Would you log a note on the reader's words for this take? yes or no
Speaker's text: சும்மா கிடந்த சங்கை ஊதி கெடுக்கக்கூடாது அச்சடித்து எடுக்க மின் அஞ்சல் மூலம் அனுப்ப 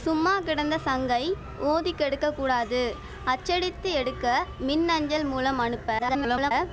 yes